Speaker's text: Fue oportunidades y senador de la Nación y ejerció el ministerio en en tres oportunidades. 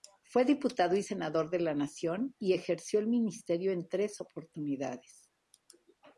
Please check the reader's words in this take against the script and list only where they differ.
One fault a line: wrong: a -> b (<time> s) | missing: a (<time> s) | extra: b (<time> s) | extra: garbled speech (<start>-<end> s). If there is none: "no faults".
wrong: oportunidades -> diputado (0.5 s)
missing: en (3.9 s)